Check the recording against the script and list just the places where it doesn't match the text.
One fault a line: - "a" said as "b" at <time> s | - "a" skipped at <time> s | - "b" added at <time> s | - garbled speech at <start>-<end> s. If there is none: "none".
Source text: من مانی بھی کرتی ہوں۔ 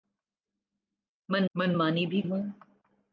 - "من" added at 1.6 s
- "کرتی" skipped at 2.2 s